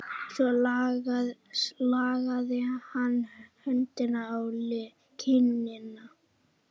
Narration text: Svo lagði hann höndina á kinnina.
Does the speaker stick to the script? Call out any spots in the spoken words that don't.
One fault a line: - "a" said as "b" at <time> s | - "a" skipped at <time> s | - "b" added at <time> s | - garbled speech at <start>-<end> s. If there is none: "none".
none